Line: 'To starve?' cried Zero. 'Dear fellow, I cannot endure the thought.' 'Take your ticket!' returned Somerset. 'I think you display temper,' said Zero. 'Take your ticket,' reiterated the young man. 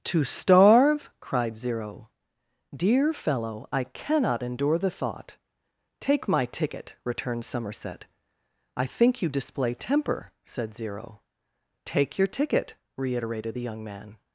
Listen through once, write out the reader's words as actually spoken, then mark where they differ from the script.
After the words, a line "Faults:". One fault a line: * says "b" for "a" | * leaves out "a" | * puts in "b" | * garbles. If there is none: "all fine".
'To starve?' cried Zero. 'Dear fellow, I cannot endure the thought.' 'Take my ticket!' returned Somerset. 'I think you display temper,' said Zero. 'Take your ticket,' reiterated the young man.
Faults:
* says "my" for "your"